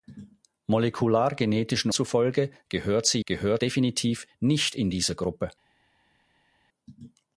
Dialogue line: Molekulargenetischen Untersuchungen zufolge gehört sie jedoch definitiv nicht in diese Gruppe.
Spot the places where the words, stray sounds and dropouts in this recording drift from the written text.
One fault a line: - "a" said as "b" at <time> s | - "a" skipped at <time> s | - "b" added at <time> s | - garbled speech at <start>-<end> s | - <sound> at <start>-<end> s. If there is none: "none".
- "Untersuchungen" skipped at 1.9 s
- "jedoch" said as "gehört" at 3.2 s